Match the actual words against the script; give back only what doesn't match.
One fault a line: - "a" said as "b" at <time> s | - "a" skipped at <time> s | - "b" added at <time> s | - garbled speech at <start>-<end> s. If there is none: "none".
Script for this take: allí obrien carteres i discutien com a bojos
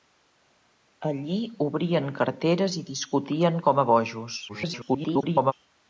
- garbled speech at 4.5-5.5 s